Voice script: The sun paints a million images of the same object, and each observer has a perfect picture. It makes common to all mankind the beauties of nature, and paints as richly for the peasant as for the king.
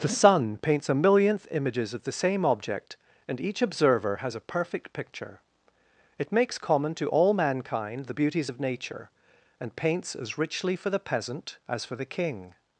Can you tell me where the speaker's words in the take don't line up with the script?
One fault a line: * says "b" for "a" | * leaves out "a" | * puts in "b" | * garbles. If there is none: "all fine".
* says "millionth" for "million"